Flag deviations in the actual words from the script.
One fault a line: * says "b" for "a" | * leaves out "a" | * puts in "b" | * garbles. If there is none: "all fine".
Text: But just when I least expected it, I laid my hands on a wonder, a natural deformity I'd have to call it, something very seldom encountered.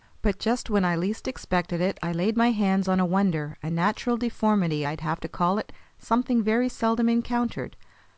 all fine